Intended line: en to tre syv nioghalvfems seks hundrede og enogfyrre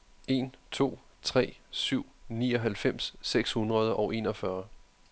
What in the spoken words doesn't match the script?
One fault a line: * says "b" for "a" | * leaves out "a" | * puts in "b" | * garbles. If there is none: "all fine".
all fine